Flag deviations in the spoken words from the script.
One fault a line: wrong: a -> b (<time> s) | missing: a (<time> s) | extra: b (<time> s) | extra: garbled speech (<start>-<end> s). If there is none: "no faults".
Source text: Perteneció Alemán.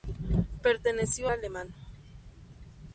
no faults